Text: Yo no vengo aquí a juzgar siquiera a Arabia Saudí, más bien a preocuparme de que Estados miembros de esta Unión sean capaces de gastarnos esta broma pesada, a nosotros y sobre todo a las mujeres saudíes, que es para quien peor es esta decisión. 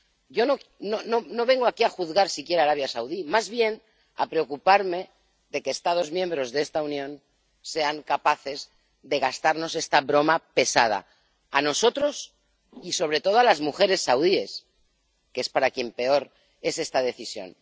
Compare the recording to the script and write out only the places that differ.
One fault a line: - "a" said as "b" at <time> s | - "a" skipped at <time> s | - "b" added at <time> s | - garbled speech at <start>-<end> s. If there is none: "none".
none